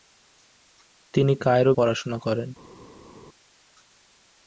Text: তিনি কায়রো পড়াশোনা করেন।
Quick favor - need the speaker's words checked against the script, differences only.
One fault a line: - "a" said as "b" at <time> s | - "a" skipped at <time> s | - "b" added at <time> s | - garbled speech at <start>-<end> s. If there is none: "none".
none